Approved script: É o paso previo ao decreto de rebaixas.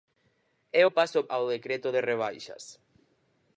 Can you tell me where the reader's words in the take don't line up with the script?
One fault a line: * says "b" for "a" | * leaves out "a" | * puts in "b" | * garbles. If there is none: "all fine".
* leaves out "previo"